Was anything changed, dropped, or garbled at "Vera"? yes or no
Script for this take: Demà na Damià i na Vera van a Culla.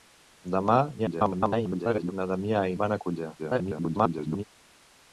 yes